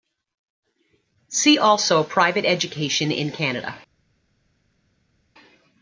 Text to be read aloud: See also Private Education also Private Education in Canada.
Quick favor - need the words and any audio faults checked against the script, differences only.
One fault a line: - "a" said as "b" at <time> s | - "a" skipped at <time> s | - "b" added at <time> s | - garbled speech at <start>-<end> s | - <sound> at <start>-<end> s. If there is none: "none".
- "also Private Education" skipped at 3.1 s